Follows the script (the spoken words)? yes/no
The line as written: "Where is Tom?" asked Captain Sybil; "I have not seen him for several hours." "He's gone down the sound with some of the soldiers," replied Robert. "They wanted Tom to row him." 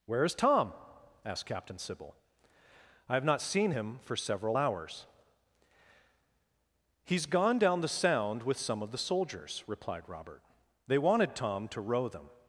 no